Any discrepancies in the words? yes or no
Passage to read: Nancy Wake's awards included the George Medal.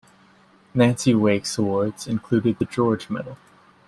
no